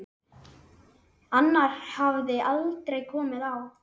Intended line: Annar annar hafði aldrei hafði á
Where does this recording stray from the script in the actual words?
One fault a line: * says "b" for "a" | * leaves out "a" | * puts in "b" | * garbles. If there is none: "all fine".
* leaves out "annar"
* says "komið" for "hafði"